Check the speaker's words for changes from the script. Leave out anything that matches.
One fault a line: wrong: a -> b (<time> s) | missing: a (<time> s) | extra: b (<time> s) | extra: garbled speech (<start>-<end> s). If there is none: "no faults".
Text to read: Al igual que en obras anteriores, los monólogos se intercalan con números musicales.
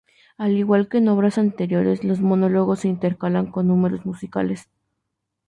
no faults